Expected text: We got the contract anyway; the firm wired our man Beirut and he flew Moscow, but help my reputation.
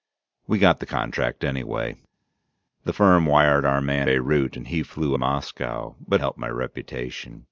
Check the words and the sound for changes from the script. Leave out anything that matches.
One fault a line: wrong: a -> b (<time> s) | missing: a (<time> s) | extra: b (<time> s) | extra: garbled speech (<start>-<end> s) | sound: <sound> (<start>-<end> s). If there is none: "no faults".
no faults